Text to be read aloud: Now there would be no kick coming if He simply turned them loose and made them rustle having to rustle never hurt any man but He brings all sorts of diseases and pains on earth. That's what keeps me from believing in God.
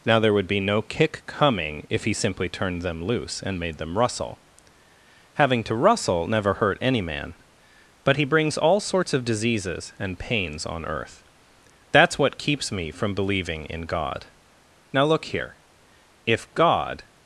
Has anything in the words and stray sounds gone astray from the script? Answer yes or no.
yes